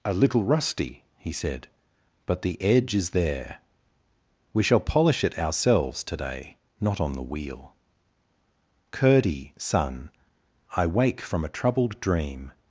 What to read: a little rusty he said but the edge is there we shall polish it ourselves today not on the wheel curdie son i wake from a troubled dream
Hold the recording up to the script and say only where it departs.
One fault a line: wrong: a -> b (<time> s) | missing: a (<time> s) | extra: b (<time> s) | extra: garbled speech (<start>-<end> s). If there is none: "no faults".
no faults